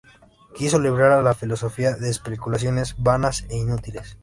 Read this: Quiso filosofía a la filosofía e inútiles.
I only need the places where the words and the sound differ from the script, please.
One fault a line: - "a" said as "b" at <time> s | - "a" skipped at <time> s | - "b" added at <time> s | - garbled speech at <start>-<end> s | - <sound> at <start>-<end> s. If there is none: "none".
- "filosofía" said as "librar" at 0.8 s
- "de especulaciones vanas" added at 1.9 s